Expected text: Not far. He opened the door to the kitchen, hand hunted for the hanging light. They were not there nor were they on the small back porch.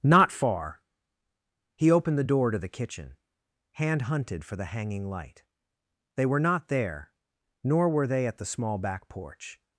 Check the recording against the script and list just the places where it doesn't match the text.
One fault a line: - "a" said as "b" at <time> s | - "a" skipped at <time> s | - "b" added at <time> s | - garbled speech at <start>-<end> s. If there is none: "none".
- "on" said as "at" at 8.3 s